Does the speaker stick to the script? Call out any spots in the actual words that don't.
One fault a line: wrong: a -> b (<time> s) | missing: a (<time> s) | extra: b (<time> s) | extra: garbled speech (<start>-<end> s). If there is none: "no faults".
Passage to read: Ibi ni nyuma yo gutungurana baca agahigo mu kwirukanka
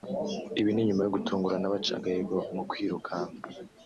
no faults